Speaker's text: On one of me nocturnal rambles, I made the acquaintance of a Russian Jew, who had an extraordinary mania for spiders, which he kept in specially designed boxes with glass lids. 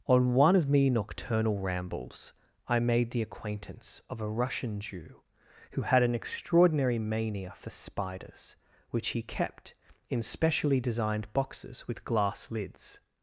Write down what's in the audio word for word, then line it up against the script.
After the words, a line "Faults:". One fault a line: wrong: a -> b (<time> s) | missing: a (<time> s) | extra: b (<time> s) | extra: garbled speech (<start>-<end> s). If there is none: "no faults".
On one of me nocturnal rambles, I made the acquaintance of a Russian Jew, who had an extraordinary mania for spiders, which he kept in specially designed boxes with glass lids.
Faults:
no faults